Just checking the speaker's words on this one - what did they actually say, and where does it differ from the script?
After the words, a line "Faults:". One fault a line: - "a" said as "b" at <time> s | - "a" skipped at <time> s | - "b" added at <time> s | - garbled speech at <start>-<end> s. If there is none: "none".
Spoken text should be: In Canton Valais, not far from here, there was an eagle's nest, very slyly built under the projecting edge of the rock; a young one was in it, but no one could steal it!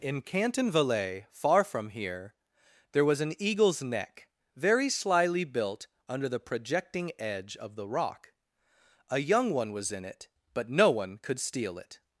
In Canton Valais, far from here, there was an eagle's neck, very slyly built under the projecting edge of the rock; a young one was in it, but no one could steal it!
Faults:
- "not" skipped at 1.3 s
- "nest" said as "neck" at 3.8 s